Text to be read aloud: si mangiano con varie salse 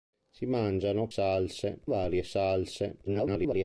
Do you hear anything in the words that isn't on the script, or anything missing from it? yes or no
yes